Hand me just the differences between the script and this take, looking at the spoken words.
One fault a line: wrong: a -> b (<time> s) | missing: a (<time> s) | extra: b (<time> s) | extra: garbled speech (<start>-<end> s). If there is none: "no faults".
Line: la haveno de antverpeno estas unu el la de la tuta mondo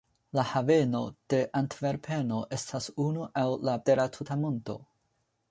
no faults